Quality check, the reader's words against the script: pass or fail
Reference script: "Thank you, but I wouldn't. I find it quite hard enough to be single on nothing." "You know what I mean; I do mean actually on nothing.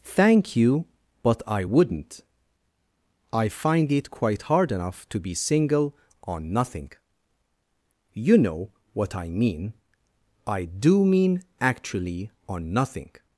pass